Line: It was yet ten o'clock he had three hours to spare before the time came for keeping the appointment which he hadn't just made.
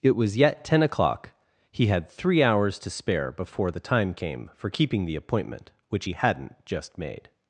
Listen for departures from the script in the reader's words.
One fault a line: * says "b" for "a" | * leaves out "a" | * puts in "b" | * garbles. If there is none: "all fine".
all fine